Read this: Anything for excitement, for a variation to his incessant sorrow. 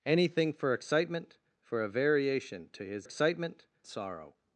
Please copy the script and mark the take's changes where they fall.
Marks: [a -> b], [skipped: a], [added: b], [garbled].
Anything for excitement, for a variation to his [incessant -> excitement] sorrow.